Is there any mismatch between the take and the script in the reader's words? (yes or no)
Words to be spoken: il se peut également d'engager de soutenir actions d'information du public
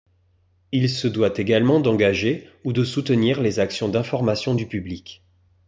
yes